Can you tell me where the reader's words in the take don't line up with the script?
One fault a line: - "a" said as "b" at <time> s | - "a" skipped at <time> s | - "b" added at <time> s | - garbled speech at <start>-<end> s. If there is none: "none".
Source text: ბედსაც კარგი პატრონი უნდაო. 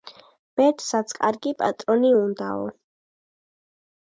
none